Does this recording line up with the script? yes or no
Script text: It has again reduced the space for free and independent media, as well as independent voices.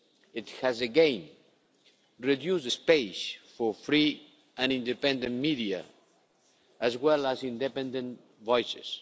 yes